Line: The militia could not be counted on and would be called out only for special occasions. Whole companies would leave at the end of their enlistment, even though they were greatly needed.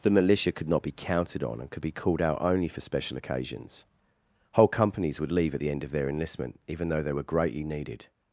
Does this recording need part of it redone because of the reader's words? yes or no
yes